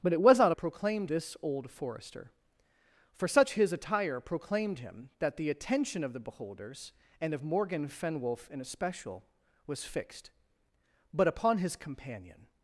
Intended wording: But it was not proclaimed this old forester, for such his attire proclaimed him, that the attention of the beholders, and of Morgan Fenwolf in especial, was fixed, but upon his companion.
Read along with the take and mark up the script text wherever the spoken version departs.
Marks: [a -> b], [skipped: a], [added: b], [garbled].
But it was not proclaimed this old forester, for such his attire proclaimed him, that the attention of the beholders, and of Morgan Fenwolf in especial, was fixed, but upon his companion.